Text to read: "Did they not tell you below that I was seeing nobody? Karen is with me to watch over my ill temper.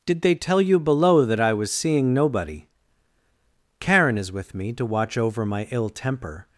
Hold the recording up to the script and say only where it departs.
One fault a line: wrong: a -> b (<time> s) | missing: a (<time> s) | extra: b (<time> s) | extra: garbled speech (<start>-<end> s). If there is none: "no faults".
missing: not (0.3 s)